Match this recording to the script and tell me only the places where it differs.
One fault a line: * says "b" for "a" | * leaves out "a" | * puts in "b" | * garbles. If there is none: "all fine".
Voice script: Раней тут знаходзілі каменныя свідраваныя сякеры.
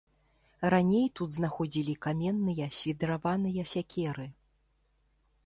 all fine